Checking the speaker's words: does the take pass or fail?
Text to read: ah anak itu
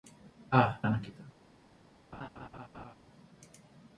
pass